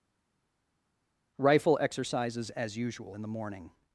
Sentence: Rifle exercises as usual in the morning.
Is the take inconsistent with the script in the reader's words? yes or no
no